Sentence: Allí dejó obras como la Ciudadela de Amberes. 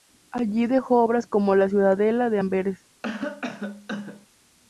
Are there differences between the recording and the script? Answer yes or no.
no